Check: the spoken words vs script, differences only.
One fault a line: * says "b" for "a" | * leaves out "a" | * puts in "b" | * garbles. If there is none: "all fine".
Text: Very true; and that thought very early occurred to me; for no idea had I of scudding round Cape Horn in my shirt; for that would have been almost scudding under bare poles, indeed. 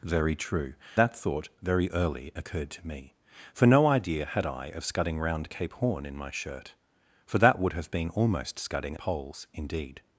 * leaves out "and"
* leaves out "under bare"